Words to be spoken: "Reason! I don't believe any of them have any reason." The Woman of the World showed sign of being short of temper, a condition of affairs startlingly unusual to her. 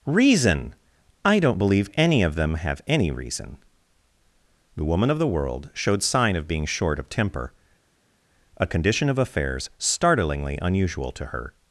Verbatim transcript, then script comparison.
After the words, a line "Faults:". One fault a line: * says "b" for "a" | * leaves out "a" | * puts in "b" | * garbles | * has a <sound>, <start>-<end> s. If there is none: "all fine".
"Reason! I don't believe any of them have any reason." The Woman of the World showed sign of being short of temper, a condition of affairs startlingly unusual to her.
Faults:
all fine